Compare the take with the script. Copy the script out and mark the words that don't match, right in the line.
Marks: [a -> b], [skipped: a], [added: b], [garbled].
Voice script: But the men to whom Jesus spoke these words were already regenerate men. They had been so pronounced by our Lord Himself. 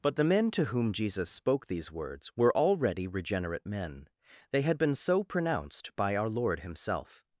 But the men to whom Jesus spoke these words were already regenerate men. They had been so pronounced by our Lord Himself.